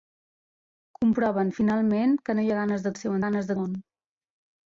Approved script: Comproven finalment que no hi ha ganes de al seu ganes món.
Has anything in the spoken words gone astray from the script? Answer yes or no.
no